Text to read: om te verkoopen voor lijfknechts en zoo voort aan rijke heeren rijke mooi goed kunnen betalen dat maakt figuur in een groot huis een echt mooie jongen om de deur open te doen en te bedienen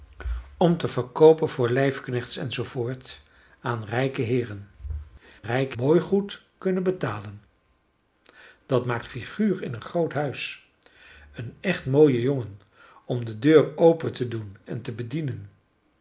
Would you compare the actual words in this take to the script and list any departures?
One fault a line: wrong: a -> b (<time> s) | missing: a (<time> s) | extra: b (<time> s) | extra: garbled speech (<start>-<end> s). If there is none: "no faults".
no faults